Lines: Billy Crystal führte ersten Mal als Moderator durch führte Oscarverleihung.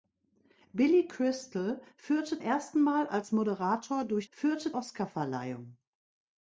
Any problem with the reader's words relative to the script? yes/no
no